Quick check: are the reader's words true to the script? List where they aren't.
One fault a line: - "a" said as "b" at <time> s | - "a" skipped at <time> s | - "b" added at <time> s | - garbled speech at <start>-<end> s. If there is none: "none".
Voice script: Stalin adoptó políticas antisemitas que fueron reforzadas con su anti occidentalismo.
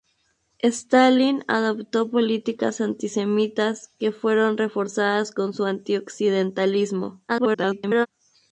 - garbled speech at 7.3-8.1 s